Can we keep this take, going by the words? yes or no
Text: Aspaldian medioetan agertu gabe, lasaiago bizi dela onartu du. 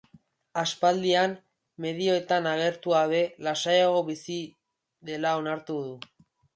yes